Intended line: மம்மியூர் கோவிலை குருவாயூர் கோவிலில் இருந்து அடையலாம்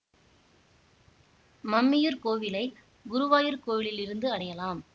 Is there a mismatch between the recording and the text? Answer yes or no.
no